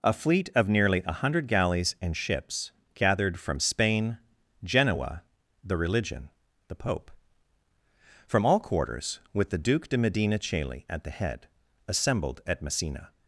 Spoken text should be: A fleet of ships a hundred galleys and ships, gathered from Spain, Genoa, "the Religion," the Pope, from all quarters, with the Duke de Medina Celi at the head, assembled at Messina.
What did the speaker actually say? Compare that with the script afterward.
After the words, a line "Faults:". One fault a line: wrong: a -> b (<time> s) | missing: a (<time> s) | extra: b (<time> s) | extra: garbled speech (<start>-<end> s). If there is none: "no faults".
A fleet of nearly a hundred galleys and ships, gathered from Spain, Genoa, "the Religion," the Pope, from all quarters, with the Duke de Medina Celi at the head, assembled at Messina.
Faults:
wrong: ships -> nearly (0.7 s)